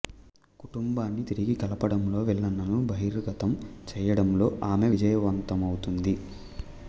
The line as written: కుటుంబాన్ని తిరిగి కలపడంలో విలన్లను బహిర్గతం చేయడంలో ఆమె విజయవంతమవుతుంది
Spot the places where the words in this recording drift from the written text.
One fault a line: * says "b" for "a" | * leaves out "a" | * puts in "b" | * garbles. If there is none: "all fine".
all fine